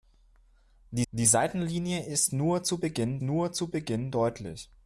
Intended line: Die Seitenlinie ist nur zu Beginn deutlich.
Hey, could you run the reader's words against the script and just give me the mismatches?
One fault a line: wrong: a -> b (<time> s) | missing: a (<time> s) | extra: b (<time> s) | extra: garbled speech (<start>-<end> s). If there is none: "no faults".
extra: die (1.1 s)
extra: nur zu Beginn (3.2 s)